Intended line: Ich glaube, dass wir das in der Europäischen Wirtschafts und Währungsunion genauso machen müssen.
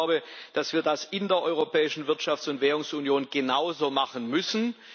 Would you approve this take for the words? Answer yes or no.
yes